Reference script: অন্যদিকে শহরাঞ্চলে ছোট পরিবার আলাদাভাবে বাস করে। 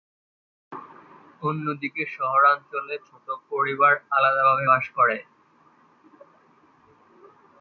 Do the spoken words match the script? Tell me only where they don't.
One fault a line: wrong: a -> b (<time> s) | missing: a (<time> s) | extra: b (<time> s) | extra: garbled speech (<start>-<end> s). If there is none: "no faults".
no faults